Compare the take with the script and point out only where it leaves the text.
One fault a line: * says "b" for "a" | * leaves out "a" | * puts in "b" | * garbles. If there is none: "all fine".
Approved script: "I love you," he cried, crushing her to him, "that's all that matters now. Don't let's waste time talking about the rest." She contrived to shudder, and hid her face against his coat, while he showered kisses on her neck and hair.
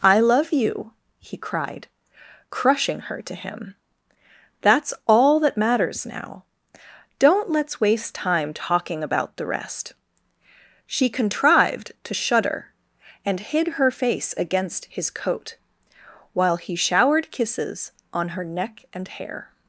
all fine